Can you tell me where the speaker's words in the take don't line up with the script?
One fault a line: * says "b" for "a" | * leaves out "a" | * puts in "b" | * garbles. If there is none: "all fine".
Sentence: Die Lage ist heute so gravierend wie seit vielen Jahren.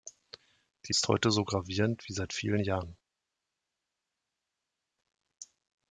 * leaves out "Lage"